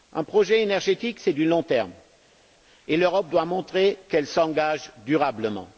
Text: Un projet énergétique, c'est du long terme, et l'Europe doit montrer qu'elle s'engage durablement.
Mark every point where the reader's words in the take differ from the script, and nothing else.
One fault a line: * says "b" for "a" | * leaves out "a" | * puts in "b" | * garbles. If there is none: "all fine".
all fine